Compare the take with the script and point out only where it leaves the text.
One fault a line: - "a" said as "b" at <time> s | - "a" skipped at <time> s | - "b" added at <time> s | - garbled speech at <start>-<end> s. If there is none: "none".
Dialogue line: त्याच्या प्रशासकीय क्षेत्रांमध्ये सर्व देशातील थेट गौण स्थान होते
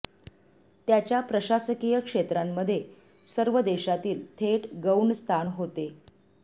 none